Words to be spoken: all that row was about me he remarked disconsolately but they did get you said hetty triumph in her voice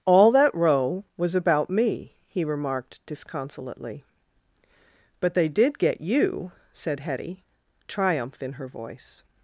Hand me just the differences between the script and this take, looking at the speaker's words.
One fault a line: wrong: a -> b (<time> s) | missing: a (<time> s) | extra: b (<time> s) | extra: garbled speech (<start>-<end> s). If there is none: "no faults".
no faults